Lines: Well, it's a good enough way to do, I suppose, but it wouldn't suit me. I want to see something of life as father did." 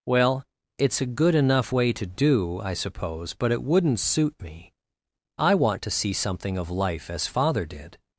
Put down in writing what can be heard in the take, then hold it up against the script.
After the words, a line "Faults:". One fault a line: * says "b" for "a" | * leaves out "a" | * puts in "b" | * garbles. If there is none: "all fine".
Well, it's a good enough way to do, I suppose, but it wouldn't suit me. I want to see something of life as father did."
Faults:
all fine